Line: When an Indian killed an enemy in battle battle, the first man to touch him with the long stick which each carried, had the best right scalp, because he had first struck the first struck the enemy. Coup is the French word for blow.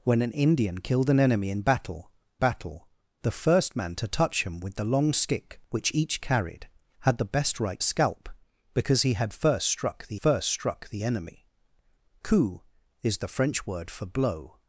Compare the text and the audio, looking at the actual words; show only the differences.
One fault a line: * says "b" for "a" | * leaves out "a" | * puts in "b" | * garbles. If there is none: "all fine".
all fine